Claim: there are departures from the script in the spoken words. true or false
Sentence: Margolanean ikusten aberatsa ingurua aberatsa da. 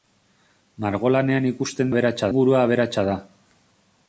false